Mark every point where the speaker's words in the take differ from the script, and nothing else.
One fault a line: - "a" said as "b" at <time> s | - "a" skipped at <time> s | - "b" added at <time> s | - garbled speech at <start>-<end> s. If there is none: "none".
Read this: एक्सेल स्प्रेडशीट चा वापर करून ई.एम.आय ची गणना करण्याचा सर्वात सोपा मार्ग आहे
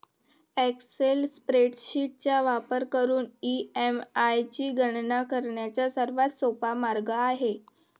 none